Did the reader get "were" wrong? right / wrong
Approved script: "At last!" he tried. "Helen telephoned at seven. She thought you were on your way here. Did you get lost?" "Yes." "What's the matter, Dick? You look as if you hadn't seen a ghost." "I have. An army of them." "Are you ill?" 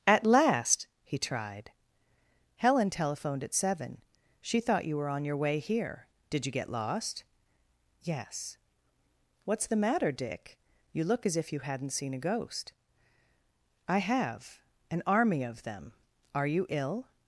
right